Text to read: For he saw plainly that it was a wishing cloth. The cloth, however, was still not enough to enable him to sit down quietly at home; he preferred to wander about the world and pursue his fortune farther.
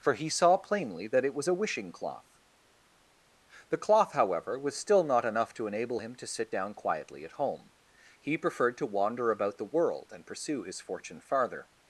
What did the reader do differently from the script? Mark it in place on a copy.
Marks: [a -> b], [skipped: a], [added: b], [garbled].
For he saw plainly that it was a wishing cloth. The cloth, however, was still not enough to enable him to sit down quietly at home; he preferred to wander about the world and pursue his fortune farther.